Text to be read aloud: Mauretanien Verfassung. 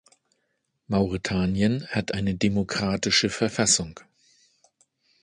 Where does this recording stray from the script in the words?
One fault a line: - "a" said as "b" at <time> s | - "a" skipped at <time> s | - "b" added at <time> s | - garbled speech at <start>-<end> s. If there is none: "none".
- "hat eine demokratische" added at 1.9 s